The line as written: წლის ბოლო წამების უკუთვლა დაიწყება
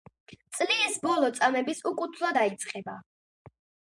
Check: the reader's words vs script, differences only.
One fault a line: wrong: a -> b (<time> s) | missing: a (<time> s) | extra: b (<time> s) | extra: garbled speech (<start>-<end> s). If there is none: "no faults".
no faults